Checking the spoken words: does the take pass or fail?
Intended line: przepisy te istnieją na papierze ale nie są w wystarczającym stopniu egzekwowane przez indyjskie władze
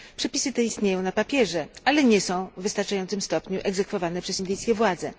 pass